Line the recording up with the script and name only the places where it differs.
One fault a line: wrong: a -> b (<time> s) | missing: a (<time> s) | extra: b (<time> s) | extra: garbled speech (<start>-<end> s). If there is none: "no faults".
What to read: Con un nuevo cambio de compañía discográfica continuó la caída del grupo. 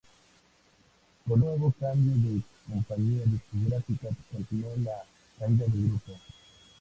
missing: un (1.4 s)